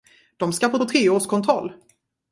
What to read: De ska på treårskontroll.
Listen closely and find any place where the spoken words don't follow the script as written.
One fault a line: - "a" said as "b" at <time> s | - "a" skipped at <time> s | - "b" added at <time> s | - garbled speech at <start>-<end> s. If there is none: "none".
- "på" added at 0.8 s